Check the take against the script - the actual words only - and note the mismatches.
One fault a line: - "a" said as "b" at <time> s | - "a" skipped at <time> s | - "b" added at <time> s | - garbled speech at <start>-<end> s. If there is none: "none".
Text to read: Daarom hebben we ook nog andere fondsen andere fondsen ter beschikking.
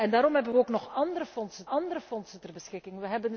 none